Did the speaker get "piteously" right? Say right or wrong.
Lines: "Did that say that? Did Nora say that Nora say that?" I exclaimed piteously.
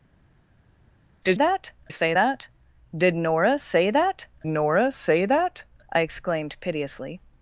right